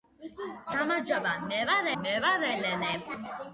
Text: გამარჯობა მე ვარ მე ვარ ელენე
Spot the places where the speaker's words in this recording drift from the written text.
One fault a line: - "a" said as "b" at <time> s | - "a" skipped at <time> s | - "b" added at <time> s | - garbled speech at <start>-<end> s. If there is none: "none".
none